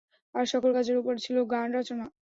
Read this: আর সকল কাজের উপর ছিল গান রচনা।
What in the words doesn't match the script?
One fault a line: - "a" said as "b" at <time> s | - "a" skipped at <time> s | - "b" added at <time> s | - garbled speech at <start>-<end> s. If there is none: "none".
none